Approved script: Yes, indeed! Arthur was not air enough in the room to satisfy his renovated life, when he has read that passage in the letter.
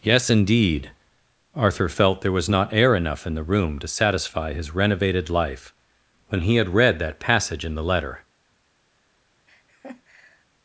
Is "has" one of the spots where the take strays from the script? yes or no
yes